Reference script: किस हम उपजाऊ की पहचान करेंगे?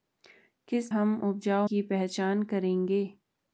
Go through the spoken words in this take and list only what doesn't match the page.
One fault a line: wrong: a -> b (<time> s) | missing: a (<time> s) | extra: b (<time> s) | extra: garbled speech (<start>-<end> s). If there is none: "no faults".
no faults